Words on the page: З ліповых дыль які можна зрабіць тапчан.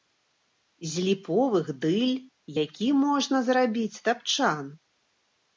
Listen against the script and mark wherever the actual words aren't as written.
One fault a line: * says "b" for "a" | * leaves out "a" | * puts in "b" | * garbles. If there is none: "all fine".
all fine